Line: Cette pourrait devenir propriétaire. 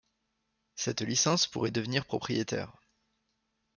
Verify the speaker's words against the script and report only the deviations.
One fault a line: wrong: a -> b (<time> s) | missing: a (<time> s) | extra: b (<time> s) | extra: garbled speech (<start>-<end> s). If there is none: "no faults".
extra: licence (1.0 s)